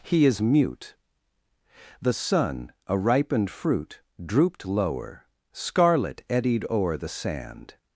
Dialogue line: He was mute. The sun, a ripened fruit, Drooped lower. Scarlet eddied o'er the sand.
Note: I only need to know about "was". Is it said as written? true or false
false